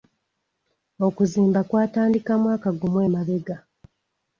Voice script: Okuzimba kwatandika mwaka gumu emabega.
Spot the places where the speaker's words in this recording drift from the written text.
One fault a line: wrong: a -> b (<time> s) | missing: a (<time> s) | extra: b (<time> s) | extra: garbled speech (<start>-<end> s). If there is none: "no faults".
no faults